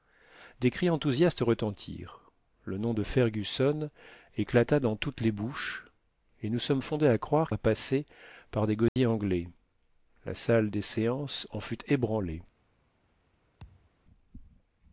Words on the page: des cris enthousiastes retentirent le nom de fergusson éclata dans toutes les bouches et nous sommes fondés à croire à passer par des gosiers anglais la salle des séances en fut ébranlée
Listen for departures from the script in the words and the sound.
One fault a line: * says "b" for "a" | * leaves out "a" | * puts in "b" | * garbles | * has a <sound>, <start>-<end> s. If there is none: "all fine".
* has a dropout, 8.9-9.0 s
* has a thud, 13.6-13.9 s